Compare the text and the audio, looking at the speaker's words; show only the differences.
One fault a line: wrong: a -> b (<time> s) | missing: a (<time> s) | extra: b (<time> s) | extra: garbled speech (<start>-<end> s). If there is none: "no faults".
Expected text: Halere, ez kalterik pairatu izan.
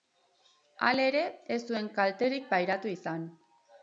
extra: zuen (1.7 s)